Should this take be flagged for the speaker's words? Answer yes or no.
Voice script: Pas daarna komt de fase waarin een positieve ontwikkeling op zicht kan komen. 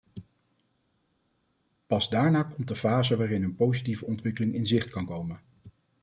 yes